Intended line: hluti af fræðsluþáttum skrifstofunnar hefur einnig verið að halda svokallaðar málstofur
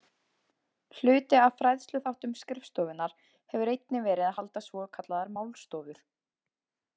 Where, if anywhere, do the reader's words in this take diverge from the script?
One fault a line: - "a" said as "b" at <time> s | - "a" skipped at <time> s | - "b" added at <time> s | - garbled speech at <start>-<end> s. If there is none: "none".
none